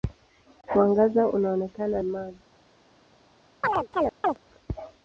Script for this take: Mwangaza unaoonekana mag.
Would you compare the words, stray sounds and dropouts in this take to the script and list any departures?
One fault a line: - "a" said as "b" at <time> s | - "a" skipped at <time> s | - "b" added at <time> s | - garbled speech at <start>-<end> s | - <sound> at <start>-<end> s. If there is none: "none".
- chirp at 3.6-4.4 s